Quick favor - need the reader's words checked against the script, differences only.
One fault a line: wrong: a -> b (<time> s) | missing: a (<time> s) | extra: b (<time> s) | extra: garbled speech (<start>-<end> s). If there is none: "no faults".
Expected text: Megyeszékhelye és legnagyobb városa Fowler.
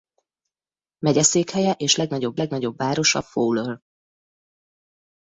extra: legnagyobb (2.4 s)